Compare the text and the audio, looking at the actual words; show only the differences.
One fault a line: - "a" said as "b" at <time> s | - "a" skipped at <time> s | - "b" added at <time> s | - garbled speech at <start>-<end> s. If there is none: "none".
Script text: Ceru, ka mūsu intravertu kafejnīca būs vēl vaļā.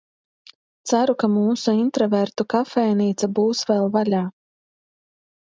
none